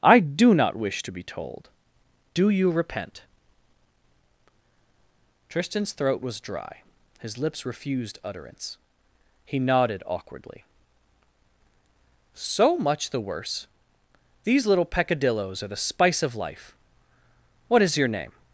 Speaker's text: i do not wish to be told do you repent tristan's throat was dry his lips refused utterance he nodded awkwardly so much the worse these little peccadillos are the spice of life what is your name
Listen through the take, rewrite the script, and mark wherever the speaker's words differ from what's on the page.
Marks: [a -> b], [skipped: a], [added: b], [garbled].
i do not wish to be told do you repent tristan's throat was dry his lips refused utterance he nodded awkwardly so much the worse these little peccadillos are the spice of life what is your name